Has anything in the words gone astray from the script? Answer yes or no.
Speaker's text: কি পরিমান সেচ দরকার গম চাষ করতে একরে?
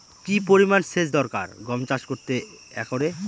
no